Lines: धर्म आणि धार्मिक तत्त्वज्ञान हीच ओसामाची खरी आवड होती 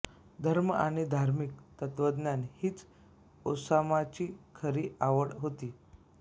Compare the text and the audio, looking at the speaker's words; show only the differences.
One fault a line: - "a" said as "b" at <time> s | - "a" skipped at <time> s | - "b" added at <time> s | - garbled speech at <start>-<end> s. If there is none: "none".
none